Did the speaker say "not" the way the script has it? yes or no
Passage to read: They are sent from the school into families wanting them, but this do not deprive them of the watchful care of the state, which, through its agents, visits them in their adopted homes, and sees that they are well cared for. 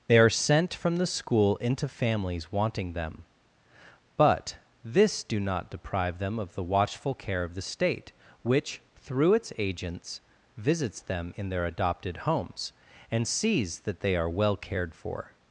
yes